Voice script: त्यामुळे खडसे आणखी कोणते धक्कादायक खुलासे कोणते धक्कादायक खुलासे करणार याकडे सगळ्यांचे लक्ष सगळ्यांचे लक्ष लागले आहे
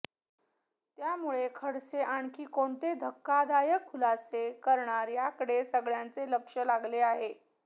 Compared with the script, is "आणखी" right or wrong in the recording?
right